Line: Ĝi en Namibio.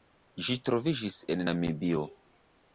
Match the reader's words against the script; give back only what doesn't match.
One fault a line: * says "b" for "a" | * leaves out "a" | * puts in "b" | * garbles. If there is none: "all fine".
* puts in "troviĝis"